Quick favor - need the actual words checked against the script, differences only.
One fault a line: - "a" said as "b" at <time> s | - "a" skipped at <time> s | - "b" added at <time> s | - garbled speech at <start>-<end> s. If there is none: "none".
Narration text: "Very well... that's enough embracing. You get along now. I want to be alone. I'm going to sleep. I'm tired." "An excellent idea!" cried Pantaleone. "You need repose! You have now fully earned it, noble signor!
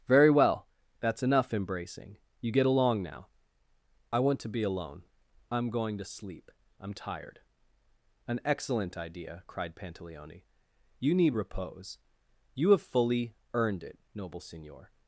- "now" skipped at 12.8 s